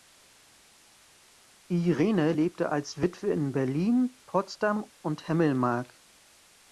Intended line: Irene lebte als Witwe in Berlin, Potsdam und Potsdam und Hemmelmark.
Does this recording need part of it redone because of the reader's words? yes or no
yes